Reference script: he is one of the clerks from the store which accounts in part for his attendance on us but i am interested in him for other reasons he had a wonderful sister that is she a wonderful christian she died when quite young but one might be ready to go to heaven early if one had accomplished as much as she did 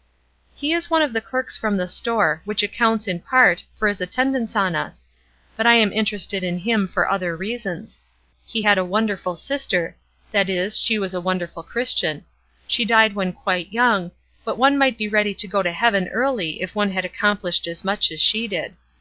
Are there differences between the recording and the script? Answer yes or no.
yes